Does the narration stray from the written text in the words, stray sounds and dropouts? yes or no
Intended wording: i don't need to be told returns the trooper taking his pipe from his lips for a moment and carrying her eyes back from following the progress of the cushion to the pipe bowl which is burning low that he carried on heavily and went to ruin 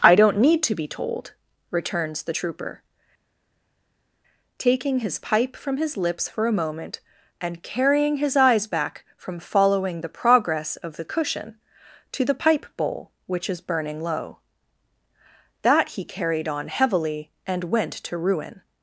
yes